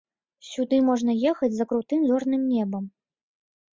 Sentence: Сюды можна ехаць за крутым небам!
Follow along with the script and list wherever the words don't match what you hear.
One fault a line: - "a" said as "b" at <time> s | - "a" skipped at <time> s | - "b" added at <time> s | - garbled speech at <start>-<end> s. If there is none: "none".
- "зорным" added at 2.1 s